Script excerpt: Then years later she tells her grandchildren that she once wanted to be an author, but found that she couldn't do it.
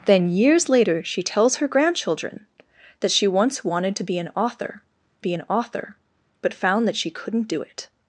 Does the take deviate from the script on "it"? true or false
false